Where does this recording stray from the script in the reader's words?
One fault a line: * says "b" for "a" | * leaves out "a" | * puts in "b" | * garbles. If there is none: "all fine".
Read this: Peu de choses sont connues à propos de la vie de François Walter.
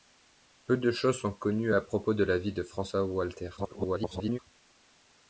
* garbles